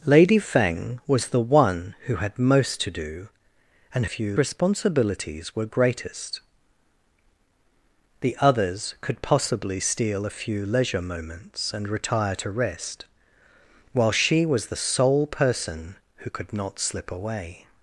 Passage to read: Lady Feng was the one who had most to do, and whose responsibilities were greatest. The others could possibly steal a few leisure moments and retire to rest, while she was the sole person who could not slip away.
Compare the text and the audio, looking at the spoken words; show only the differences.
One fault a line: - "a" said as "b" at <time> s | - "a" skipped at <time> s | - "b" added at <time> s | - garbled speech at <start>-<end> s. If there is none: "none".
- "whose" said as "few" at 4.1 s